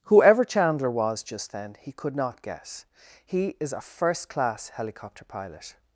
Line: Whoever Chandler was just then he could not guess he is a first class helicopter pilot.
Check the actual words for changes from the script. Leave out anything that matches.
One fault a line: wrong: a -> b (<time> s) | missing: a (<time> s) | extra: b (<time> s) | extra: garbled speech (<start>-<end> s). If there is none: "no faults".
no faults